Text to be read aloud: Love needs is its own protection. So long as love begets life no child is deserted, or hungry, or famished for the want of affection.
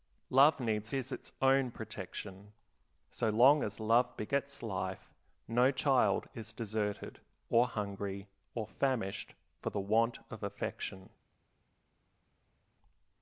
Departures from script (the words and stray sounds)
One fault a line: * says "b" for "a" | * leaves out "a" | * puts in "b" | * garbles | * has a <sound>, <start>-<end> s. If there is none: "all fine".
all fine